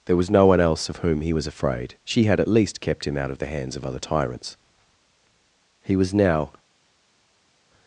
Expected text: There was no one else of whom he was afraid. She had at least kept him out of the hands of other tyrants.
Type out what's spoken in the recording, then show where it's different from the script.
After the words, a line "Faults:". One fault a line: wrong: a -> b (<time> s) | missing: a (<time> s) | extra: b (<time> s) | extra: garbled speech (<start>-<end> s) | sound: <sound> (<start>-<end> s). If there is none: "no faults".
There was no one else of whom he was afraid. She had at least kept him out of the hands of other tyrants. He was now
Faults:
extra: He was now (5.8 s)